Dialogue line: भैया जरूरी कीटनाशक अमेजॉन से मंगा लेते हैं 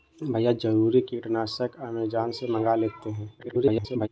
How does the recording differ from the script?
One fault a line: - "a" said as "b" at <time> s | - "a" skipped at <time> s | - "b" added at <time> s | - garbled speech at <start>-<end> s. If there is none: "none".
- garbled speech at 3.4-4.1 s